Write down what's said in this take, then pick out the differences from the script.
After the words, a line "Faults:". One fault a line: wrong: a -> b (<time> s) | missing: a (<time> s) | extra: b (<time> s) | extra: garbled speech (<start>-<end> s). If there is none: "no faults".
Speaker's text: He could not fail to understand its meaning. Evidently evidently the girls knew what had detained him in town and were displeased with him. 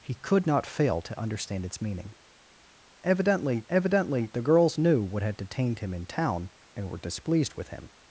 He could not fail to understand its meaning. Evidently evidently the girls knew what had detained him in town and were displeased with him.
Faults:
no faults